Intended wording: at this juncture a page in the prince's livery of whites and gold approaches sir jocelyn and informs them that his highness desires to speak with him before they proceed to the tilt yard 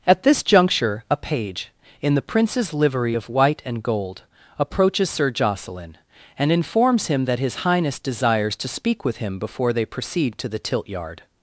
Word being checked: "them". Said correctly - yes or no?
no